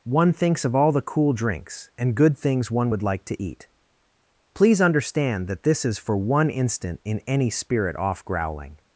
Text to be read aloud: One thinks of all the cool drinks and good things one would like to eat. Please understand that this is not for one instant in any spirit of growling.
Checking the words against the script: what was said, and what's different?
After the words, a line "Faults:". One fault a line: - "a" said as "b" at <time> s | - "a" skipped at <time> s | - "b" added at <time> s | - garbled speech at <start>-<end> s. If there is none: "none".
One thinks of all the cool drinks and good things one would like to eat. Please understand that this is for one instant in any spirit off growling.
Faults:
- "not" skipped at 6.0 s
- "of" said as "off" at 7.9 s